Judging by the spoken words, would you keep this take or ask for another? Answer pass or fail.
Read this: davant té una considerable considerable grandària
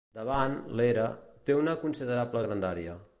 fail